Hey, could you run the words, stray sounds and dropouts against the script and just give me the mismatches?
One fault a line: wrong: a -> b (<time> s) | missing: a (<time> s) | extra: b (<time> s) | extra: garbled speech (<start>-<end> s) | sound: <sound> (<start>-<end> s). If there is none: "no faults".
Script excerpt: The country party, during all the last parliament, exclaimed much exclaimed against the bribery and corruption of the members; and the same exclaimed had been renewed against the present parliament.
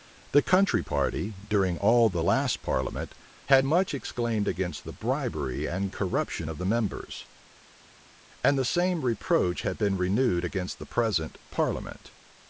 wrong: exclaimed -> had (3.5 s)
wrong: exclaimed -> reproach (9.0 s)